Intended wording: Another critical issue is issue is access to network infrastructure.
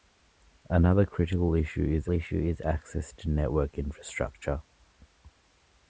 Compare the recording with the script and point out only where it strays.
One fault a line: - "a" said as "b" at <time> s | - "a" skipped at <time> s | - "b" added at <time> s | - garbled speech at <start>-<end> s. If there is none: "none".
none